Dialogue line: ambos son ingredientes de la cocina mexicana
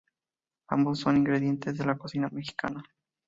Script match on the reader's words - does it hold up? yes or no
yes